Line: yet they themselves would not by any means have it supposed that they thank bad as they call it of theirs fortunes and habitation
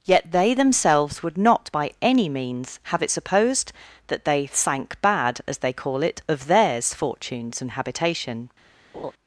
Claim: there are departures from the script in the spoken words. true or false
false